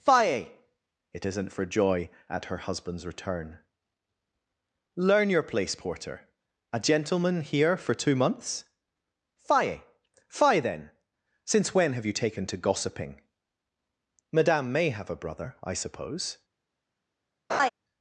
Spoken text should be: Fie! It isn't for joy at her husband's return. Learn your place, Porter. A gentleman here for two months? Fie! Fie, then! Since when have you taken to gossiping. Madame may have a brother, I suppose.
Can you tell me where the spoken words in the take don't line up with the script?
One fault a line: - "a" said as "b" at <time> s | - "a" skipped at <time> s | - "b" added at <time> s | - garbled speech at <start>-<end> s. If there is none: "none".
none